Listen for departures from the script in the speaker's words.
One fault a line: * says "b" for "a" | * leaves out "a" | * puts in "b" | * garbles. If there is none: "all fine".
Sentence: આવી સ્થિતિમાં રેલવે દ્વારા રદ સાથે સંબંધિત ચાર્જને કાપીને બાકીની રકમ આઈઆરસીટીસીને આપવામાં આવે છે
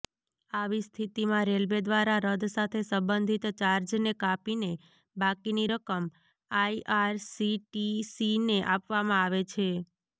all fine